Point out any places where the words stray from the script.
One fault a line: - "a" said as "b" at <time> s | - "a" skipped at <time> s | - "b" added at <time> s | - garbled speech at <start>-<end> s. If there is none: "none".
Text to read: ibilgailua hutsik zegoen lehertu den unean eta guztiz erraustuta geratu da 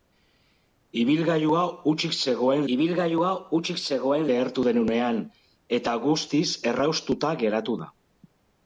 - "ibilgailua hutsik zegoen" added at 2.7 s